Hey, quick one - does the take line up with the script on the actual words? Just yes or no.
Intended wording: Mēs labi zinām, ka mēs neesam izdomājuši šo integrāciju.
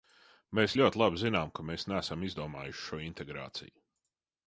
no